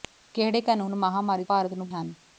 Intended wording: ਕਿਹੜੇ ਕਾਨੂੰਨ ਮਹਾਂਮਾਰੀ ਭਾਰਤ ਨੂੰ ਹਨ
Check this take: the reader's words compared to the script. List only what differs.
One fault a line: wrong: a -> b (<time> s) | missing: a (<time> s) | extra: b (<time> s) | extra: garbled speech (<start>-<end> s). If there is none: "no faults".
no faults